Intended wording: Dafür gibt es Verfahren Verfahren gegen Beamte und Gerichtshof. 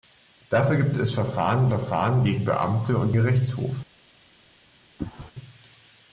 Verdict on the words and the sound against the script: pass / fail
fail